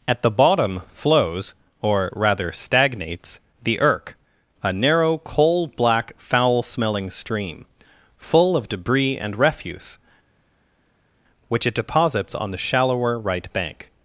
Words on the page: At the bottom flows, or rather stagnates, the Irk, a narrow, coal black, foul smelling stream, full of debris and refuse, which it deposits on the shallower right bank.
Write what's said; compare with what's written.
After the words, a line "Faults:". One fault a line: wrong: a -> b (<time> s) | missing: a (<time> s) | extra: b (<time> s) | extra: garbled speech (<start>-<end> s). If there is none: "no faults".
At the bottom flows, or rather stagnates, the Irk, a narrow, coal black, foul smelling stream, full of debris and refuse, which it deposits on the shallower right bank.
Faults:
no faults